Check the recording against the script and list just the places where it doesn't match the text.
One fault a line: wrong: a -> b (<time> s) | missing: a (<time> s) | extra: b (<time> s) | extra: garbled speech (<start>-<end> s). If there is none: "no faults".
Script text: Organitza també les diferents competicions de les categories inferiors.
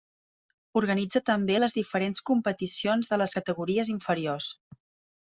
no faults